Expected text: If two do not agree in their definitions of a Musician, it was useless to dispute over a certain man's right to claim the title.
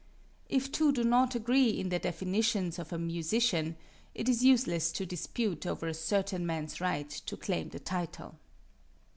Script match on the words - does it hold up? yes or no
no